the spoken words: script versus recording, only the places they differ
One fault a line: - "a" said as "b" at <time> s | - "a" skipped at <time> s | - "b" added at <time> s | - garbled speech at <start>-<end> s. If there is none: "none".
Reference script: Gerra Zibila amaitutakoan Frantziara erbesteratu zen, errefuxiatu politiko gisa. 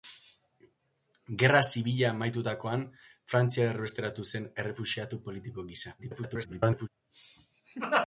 - garbled speech at 6.0-6.9 s